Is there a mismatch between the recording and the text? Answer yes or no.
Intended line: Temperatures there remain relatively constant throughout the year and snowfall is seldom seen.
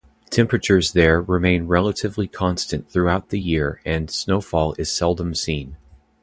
no